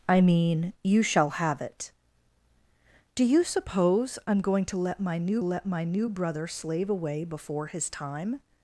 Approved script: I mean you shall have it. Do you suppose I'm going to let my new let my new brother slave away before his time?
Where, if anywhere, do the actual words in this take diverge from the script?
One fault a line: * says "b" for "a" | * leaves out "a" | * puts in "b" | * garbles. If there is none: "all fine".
all fine